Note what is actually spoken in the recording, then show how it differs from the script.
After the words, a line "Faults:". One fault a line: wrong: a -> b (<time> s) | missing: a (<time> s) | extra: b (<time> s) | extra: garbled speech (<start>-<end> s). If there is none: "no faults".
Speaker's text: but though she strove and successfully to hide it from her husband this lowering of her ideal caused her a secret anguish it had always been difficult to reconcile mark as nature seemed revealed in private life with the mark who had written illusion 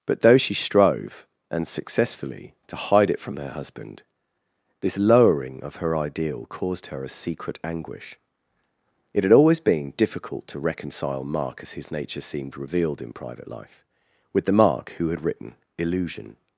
but though she strove and successfully to hide it from her husband this lowering of her ideal caused her a secret anguish it had always been difficult to reconcile mark as his nature seemed revealed in private life with the mark who had written illusion
Faults:
extra: his (11.7 s)